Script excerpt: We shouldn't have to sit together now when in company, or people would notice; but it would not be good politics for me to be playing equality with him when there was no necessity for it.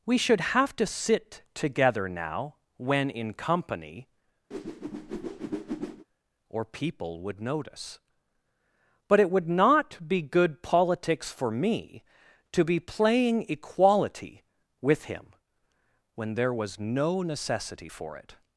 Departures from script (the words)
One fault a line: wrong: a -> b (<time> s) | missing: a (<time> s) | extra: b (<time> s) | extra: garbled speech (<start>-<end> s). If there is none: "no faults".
wrong: shouldn't -> should (0.2 s)